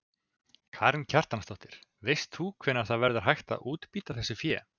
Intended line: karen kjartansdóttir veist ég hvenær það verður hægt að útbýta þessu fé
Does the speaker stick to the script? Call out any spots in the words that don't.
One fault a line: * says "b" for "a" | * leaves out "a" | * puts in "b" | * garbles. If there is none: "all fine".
* says "þú" for "ég"